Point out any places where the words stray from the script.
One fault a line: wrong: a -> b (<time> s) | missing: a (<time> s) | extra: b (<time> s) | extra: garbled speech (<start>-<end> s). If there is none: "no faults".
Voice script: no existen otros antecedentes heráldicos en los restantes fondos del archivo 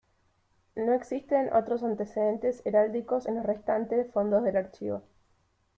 no faults